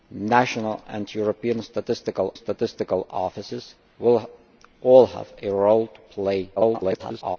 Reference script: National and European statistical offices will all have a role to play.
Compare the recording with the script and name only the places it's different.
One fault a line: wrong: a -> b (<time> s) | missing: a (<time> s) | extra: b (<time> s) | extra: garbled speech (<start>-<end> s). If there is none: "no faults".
extra: statistical (2.3 s)
extra: garbled speech (6.6-7.4 s)